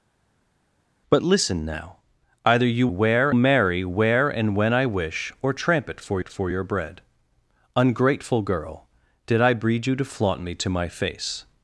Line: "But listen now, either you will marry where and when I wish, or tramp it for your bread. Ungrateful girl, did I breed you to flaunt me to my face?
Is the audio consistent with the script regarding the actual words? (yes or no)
no